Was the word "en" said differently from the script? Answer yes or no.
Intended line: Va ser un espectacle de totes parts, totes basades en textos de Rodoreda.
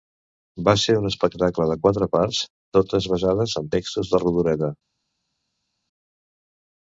no